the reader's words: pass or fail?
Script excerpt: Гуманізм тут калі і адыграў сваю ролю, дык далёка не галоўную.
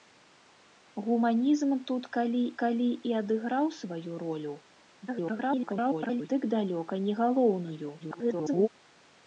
fail